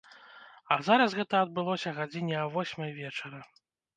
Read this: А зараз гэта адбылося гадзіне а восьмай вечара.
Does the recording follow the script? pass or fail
pass